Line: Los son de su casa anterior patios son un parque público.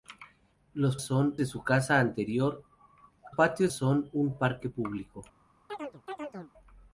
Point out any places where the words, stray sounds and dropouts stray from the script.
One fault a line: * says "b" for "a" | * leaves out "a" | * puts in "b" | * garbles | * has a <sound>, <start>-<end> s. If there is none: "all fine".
* has a chirp, 5.7-6.5 s